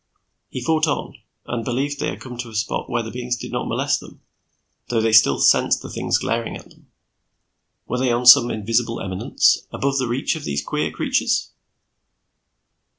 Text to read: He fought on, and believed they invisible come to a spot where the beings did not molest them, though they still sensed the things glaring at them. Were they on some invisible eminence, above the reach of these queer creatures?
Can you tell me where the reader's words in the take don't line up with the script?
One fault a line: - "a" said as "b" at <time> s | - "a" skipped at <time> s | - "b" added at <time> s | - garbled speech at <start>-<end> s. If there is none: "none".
- "invisible" said as "had" at 2.1 s